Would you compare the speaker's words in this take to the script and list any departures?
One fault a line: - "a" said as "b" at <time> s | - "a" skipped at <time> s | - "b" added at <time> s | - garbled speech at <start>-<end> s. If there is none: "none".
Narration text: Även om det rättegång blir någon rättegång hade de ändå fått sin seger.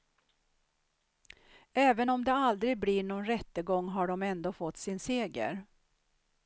- "rättegång" said as "aldrig" at 2.3 s
- "hade" said as "har" at 3.9 s